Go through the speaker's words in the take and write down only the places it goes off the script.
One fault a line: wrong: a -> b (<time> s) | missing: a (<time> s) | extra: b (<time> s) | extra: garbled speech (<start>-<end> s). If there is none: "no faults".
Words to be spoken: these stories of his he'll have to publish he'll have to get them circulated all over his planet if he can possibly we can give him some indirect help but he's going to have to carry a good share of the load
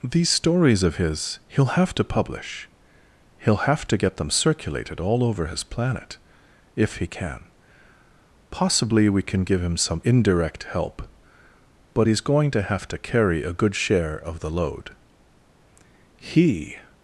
extra: he (16.2 s)